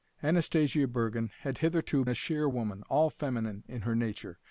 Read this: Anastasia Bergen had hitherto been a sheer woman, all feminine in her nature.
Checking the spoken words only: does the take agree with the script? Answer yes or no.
no